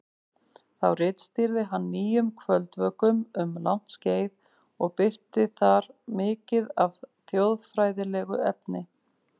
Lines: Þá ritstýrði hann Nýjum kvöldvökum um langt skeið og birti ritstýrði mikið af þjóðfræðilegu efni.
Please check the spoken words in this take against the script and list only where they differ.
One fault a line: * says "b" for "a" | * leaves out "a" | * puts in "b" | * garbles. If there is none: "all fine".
* says "þar" for "ritstýrði"